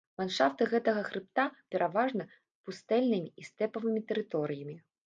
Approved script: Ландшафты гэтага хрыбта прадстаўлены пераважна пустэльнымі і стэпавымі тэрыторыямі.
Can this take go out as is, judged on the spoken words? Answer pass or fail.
fail